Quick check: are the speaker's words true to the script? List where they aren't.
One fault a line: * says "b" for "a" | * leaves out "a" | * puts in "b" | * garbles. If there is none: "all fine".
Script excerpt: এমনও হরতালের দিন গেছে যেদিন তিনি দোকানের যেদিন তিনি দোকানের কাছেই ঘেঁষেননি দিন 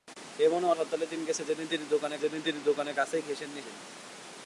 all fine